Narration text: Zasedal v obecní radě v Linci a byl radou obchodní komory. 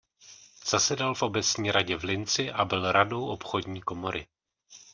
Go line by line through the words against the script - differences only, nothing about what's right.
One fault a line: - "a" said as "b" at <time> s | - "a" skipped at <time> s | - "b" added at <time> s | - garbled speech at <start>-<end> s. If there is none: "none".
none